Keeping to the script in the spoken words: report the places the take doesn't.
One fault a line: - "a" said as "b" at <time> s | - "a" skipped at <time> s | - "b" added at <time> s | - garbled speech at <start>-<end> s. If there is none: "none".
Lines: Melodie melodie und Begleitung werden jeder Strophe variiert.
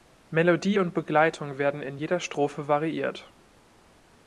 - "melodie" skipped at 0.8 s
- "in" added at 1.8 s